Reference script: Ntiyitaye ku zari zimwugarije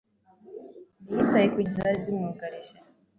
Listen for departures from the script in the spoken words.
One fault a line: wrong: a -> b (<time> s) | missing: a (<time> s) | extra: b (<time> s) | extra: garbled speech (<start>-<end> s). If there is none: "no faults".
no faults